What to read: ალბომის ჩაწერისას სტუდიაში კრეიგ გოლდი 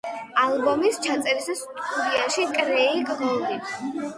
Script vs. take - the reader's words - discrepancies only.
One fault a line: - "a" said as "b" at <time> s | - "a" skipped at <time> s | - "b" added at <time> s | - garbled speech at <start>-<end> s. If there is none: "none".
none